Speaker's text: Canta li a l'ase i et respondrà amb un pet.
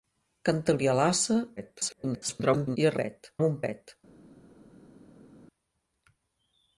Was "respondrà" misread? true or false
true